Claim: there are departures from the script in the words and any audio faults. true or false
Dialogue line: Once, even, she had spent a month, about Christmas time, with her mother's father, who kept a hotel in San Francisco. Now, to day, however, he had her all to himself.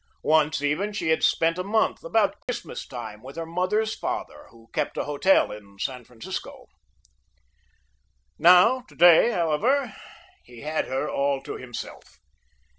true